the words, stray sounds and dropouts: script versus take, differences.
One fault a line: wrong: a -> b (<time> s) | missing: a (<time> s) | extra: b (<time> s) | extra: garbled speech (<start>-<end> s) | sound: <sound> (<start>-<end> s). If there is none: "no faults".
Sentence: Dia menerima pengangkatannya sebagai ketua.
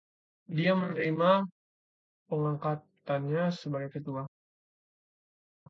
no faults